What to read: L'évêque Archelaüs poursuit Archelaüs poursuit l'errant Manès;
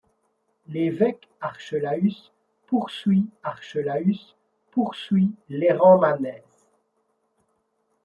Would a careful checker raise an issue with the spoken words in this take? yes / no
no